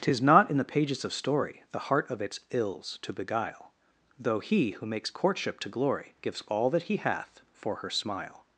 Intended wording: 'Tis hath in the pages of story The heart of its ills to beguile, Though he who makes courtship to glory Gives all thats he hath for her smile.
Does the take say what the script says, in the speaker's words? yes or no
no